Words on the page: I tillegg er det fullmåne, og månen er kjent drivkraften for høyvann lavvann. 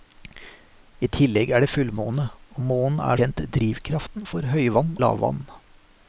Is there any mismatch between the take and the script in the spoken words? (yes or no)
no